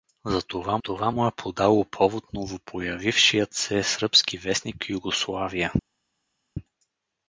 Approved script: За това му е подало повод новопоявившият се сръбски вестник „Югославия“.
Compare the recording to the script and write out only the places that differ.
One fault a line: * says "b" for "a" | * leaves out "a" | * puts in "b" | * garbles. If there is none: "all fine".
* puts in "това"